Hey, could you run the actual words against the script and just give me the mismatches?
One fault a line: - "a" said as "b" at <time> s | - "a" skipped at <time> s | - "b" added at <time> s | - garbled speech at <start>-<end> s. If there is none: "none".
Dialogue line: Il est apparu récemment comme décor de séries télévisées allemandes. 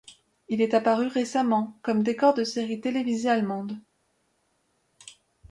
none